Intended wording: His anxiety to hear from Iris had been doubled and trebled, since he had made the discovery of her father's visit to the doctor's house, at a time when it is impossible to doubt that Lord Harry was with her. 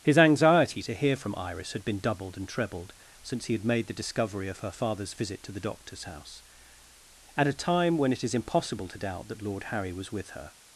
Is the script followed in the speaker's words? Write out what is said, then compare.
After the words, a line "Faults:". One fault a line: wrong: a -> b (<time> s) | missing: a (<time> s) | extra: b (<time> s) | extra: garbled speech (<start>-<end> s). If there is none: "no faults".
His anxiety to hear from Iris had been doubled and trebled, since he had made the discovery of her father's visit to the doctor's house, at a time when it is impossible to doubt that Lord Harry was with her.
Faults:
no faults